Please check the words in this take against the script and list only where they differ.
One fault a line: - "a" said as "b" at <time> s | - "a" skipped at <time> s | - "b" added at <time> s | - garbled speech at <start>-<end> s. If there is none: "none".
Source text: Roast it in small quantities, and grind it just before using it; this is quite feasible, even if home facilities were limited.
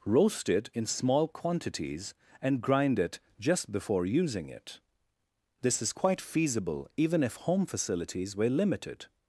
none